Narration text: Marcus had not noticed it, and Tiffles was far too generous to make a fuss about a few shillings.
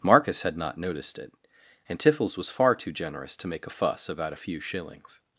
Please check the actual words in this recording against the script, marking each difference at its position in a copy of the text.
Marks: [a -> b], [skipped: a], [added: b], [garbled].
Marcus had not noticed it, and Tiffles was far too generous to make a fuss about a few shillings.